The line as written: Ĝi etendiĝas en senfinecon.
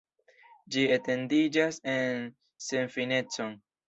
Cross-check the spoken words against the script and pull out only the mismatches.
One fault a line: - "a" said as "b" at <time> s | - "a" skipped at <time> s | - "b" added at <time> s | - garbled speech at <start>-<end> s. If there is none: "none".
none